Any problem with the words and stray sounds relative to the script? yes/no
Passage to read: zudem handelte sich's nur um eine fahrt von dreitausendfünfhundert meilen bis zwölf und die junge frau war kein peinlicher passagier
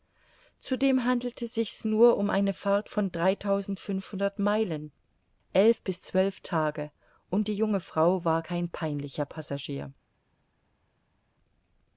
yes